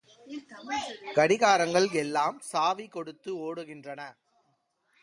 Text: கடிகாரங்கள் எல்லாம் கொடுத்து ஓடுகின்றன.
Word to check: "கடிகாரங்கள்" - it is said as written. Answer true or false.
true